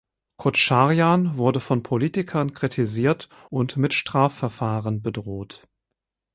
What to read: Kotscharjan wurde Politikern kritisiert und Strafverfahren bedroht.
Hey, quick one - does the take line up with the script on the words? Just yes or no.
no